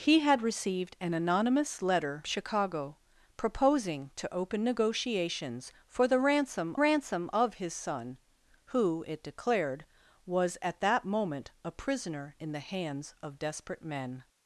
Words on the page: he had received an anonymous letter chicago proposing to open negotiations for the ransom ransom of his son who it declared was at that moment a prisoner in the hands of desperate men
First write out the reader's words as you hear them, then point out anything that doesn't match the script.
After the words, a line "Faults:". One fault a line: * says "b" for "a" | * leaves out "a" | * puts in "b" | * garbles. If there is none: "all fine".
he had received an anonymous letter chicago proposing to open negotiations for the ransom ransom of his son who it declared was at that moment a prisoner in the hands of desperate men
Faults:
all fine